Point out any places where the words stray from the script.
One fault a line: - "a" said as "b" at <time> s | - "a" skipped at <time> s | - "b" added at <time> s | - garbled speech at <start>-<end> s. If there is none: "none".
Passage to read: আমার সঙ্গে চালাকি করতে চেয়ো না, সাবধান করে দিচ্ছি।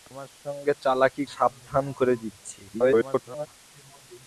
- "করতে চেয়ো না" skipped at 1.2 s
- garbled speech at 2.7-3.5 s